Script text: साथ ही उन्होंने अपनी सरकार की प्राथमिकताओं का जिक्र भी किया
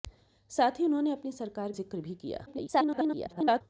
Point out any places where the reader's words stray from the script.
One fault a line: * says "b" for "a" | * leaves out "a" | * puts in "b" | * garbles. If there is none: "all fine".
* leaves out "की प्राथमिकताओं का"
* garbles